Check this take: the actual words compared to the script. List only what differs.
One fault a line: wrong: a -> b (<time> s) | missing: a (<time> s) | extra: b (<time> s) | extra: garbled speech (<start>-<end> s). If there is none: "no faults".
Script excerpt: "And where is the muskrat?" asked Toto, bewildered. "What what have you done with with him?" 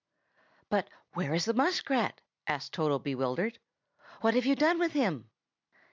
wrong: And -> But (0.7 s)
missing: what (4.3 s)
missing: with (4.9 s)